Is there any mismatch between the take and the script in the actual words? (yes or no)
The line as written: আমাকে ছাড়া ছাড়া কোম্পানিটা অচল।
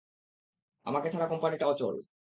yes